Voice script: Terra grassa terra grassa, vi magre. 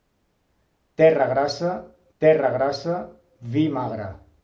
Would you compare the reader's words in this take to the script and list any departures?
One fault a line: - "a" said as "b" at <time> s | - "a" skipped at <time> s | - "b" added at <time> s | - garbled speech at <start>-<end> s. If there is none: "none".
none